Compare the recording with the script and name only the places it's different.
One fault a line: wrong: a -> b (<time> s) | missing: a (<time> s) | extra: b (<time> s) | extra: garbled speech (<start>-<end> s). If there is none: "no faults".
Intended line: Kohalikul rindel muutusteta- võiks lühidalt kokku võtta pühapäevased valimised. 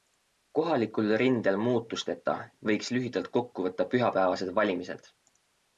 no faults